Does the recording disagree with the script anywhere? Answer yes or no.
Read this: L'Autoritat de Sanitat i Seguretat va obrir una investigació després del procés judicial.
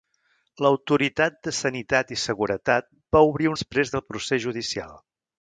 yes